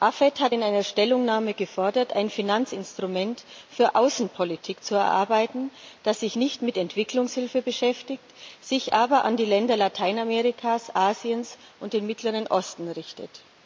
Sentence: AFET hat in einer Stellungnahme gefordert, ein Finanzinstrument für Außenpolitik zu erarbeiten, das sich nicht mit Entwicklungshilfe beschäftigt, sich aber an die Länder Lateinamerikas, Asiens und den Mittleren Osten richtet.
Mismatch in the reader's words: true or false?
false